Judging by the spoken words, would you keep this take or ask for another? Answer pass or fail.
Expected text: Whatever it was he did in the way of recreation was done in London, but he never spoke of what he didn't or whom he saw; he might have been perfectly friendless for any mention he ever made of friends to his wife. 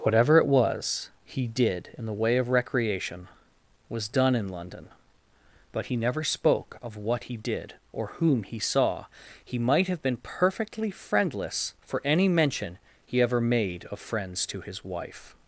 fail